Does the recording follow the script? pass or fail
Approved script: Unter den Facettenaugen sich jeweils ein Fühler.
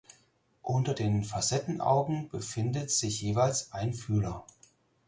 fail